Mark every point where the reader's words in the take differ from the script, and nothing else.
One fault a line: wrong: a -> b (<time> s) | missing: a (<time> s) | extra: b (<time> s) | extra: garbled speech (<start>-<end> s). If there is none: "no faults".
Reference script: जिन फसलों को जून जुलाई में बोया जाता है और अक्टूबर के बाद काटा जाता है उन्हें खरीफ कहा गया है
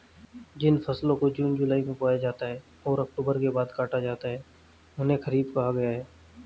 no faults